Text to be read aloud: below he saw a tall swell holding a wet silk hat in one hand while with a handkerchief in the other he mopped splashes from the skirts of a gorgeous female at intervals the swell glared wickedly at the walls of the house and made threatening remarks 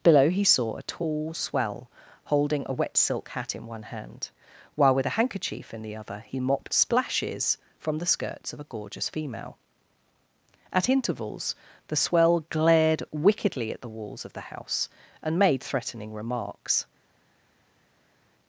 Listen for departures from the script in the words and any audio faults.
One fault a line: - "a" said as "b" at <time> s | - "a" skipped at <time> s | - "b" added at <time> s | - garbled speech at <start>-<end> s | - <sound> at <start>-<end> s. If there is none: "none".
none